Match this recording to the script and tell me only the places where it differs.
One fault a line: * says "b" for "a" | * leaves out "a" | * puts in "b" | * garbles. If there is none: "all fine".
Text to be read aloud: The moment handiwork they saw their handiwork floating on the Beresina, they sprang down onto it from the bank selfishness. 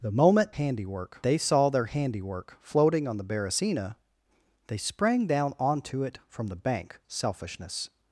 all fine